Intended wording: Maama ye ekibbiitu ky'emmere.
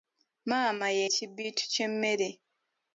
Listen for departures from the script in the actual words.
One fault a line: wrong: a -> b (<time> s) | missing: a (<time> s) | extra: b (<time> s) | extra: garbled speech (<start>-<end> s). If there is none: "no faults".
no faults